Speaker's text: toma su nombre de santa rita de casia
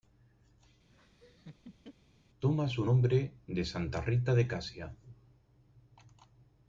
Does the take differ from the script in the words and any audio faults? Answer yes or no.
yes